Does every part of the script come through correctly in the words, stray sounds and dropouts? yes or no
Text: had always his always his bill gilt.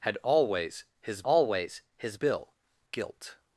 yes